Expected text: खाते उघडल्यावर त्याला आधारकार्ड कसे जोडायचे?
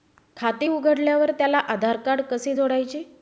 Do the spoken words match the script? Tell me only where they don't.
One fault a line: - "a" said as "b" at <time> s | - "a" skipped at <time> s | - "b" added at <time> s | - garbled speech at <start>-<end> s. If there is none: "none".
none